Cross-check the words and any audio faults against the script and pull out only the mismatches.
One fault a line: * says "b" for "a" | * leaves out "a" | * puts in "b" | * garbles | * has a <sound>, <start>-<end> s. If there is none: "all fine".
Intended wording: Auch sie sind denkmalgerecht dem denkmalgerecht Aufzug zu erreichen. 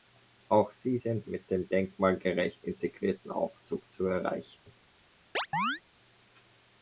* says "mit" for "denkmalgerecht"
* puts in "integrierten"
* has a dropout, 4.6-4.7 s
* has a chirp, 5.3-5.8 s